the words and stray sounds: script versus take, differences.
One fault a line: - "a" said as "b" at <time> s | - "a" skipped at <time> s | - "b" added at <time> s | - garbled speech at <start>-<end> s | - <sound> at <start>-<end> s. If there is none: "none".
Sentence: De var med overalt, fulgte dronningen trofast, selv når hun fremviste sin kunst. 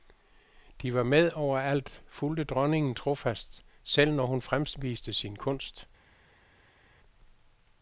none